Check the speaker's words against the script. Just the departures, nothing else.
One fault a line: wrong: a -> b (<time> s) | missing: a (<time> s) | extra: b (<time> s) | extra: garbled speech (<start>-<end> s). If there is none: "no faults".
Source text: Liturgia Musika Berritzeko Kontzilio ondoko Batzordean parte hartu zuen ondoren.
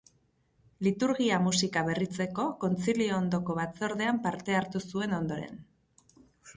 no faults